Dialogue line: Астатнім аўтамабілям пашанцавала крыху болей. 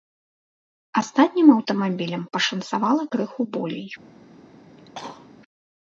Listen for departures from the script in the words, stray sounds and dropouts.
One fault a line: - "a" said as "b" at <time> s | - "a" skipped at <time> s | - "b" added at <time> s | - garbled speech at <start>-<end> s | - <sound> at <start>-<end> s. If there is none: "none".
- cough at 4.8-5.3 s